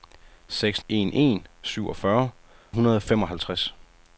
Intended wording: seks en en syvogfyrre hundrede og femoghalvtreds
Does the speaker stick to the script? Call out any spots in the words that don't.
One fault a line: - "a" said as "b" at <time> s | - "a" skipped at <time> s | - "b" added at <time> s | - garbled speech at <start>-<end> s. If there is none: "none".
none